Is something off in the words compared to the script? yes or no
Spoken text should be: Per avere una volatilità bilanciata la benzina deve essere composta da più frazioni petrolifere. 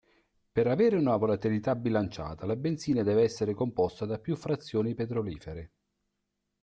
no